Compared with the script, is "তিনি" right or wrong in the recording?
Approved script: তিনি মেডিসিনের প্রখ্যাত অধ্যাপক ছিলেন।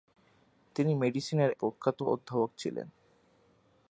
right